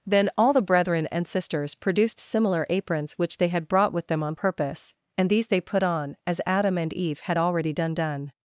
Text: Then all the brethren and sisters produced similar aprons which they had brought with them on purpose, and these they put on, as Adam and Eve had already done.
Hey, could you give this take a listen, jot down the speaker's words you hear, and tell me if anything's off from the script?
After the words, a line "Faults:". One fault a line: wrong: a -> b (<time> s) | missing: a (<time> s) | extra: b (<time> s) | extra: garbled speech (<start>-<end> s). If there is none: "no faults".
Then all the brethren and sisters produced similar aprons which they had brought with them on purpose, and these they put on, as Adam and Eve had already done done.
Faults:
extra: done (7.9 s)